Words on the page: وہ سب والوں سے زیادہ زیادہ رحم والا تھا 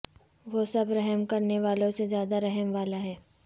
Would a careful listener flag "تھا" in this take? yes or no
yes